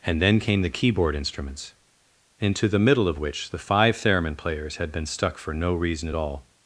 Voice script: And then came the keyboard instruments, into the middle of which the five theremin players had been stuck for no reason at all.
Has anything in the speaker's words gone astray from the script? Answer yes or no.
no